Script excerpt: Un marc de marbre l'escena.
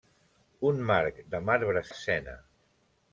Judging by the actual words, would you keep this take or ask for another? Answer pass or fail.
pass